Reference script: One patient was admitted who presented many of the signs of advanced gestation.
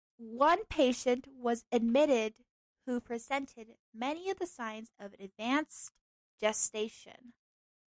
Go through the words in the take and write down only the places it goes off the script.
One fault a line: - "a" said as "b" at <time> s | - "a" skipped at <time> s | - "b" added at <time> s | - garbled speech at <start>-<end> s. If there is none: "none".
none